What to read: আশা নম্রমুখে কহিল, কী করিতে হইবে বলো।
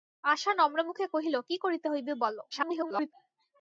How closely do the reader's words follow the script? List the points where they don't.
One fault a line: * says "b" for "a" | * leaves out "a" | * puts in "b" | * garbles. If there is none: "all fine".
* garbles